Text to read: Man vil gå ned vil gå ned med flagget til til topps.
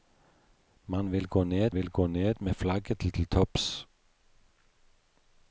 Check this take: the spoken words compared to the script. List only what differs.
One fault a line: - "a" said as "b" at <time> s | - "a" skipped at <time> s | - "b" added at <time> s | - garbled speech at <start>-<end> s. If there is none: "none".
none